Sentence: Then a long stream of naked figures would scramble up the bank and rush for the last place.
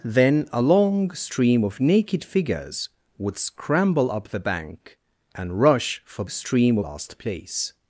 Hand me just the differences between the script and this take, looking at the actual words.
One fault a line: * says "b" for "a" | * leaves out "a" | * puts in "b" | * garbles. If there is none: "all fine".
* says "stream" for "the"